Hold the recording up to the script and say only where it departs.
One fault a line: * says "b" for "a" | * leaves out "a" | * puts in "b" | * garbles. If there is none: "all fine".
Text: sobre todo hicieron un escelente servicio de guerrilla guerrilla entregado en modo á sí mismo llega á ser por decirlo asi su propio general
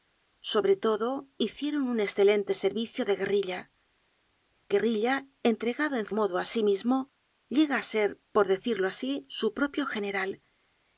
all fine